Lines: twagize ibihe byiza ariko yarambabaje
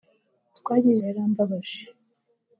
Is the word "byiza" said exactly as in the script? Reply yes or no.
no